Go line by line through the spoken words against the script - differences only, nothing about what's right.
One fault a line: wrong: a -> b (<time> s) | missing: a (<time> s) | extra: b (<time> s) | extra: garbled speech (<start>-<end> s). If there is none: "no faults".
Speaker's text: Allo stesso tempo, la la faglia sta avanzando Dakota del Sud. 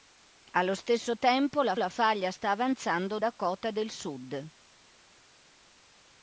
no faults